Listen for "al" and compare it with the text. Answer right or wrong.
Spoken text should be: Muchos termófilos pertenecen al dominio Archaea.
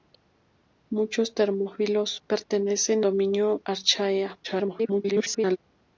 wrong